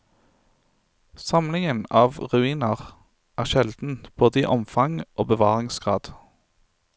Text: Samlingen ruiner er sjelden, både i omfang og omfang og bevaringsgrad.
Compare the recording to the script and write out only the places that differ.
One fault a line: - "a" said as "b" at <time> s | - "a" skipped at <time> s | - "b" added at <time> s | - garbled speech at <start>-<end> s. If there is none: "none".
- "av" added at 2.0 s
- "omfang og" skipped at 5.3 s